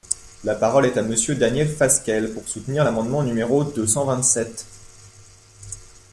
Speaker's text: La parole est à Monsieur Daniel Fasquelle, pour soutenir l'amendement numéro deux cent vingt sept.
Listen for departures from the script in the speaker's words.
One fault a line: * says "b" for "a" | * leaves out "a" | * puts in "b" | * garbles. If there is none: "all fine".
all fine